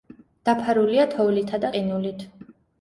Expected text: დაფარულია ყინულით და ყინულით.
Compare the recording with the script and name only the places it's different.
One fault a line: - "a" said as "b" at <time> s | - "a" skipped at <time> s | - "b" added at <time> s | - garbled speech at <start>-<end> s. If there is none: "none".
- "ყინულით" said as "თოვლითა" at 1.1 s